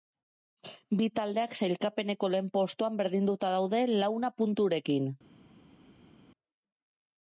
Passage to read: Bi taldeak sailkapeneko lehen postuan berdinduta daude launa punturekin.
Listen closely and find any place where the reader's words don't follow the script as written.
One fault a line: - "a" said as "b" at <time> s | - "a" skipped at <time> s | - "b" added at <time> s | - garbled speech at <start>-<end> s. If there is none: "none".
none